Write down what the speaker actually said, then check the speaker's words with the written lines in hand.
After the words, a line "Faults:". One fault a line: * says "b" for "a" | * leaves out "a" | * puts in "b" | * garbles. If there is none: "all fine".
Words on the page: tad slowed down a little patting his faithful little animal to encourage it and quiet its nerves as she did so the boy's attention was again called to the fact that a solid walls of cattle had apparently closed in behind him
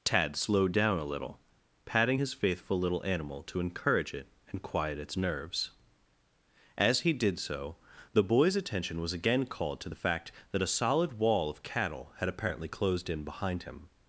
tad slowed down a little patting his faithful little animal to encourage it and quiet its nerves as he did so the boy's attention was again called to the fact that a solid wall of cattle had apparently closed in behind him
Faults:
* says "he" for "she"
* says "wall" for "walls"